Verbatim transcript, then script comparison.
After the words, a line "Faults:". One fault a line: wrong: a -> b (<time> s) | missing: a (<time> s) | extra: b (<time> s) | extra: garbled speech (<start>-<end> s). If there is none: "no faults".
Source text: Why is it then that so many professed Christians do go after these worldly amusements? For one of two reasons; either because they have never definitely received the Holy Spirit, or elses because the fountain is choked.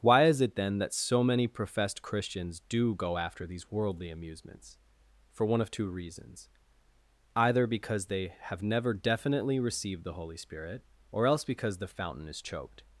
Why is it then that so many professed Christians do go after these worldly amusements? For one of two reasons; either because they have never definitely received the Holy Spirit, or else because the fountain is choked.
Faults:
wrong: elses -> else (11.3 s)